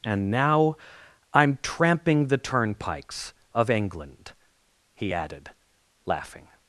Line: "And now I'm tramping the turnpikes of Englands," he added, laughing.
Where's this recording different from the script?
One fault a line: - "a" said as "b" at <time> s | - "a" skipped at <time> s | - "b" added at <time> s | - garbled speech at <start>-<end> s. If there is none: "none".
- "Englands" said as "England" at 3.7 s